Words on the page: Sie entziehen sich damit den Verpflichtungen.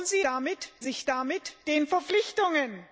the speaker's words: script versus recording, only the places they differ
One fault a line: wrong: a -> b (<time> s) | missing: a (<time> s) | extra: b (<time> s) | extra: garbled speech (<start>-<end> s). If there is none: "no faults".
wrong: entziehen -> damit (0.2 s)